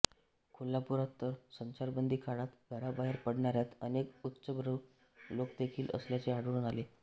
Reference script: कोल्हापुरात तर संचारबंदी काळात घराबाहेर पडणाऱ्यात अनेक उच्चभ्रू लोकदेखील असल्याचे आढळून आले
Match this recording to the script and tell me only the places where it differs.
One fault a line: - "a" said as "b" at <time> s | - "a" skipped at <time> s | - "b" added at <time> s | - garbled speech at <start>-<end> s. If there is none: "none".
none